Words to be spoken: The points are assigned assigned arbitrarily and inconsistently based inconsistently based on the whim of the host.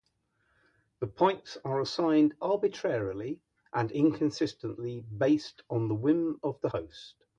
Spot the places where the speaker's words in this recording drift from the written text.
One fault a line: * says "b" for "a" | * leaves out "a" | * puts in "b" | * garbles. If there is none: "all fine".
* leaves out "assigned"
* leaves out "inconsistently based"